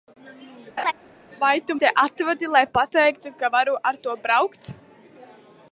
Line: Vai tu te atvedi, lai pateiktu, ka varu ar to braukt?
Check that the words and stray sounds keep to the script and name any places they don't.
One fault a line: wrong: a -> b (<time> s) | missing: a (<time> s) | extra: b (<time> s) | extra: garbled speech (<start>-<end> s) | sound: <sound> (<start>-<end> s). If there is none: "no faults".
sound: laugh (0.8-0.9 s)